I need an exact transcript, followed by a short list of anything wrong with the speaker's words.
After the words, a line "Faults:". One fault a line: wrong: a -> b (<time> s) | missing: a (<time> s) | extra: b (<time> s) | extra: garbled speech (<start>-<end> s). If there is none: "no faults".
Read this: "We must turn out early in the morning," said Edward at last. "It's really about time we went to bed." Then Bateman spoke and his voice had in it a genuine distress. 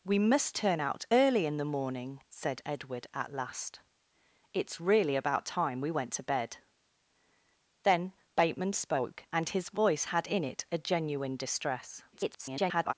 "We must turn out early in the morning," said Edward at last. "It's really about time we went to bed." Then Bateman spoke and his voice had in it a genuine distress. [garbled]
Faults:
extra: garbled speech (12.1-12.9 s)